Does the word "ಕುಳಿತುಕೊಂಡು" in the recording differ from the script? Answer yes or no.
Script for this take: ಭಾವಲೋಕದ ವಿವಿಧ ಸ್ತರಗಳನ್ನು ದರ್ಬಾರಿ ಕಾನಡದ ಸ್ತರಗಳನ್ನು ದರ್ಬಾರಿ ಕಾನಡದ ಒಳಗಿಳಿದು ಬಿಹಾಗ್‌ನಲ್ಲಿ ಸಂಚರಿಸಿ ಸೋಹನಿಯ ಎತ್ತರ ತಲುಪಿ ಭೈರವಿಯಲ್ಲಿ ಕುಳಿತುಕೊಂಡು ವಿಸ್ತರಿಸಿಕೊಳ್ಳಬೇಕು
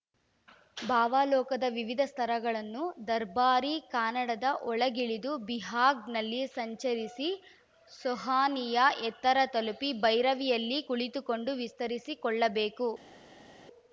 no